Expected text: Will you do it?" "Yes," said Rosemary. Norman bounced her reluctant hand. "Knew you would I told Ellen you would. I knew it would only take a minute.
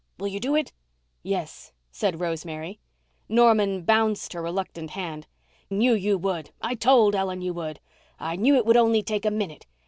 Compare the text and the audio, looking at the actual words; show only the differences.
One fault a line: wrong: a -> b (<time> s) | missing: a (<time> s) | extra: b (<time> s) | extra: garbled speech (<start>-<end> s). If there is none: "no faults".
no faults